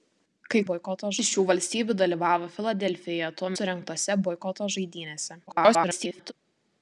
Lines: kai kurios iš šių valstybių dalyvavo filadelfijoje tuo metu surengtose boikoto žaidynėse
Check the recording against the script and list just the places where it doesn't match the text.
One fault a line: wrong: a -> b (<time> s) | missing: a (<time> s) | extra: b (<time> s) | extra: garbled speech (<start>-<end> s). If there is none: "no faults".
wrong: kurios -> boikoto (0.7 s)
missing: metu (3.5 s)
extra: garbled speech (5.5-6.3 s)